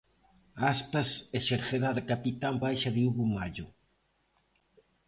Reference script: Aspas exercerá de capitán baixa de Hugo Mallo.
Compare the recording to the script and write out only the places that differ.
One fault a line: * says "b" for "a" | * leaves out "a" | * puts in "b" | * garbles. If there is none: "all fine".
all fine